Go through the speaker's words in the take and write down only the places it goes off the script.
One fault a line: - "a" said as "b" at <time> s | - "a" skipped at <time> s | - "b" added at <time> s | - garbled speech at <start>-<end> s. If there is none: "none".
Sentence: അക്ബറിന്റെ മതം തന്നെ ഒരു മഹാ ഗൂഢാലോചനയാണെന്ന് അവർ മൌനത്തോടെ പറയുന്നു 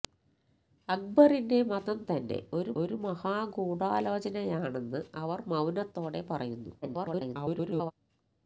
- "ഒരു" added at 2.8 s
- garbled speech at 6.8-7.9 s